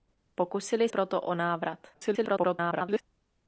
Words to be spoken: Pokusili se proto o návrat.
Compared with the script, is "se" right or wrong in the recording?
wrong